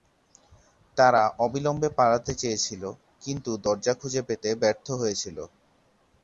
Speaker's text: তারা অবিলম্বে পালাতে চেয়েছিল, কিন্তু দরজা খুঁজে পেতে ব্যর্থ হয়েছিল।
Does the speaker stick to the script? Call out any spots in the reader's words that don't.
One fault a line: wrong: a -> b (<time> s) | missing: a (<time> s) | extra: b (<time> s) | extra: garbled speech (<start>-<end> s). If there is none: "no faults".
no faults